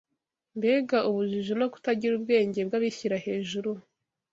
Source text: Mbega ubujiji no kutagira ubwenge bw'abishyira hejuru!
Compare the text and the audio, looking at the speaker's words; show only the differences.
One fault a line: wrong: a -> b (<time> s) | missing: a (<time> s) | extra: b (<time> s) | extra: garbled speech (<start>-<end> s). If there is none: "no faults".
no faults